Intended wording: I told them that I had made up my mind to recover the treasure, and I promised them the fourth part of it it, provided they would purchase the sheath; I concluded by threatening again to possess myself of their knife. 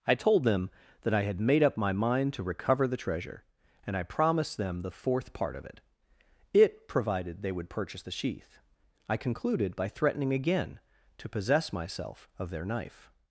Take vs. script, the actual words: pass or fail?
pass